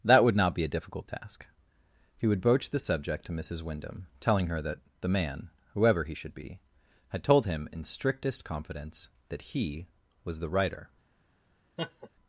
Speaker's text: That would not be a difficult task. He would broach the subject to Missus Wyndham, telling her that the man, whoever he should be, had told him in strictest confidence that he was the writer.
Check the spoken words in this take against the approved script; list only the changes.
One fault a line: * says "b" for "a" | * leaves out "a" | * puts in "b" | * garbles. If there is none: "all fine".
all fine